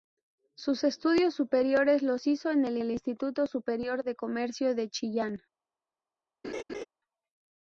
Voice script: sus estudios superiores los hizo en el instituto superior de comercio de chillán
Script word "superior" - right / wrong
right